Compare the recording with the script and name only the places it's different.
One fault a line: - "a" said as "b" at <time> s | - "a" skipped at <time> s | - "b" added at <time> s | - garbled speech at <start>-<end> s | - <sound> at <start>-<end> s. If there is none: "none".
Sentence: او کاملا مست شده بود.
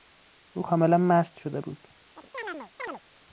- chirp at 2.2-3.0 s